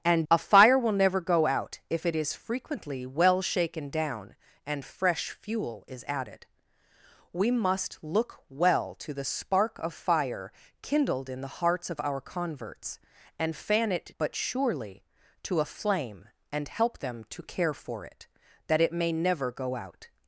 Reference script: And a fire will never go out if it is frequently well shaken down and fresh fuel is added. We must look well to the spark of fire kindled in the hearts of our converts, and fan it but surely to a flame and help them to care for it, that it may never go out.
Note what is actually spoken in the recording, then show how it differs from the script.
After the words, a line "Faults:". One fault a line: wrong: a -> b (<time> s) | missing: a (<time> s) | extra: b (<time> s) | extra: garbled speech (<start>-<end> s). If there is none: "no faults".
And a fire will never go out if it is frequently well shaken down and fresh fuel is added. We must look well to the spark of fire kindled in the hearts of our converts, and fan it but surely to a flame and help them to care for it, that it may never go out.
Faults:
no faults